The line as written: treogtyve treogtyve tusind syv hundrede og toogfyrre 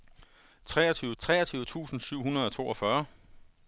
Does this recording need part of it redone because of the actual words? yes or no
no